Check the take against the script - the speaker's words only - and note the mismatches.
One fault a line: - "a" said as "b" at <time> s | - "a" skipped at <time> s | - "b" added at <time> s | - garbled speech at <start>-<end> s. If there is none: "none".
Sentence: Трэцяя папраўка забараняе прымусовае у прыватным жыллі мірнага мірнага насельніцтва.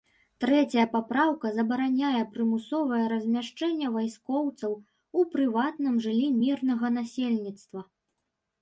- "размяшчэнне вайскоўцаў" added at 3.1 s
- "мірнага" skipped at 6.9 s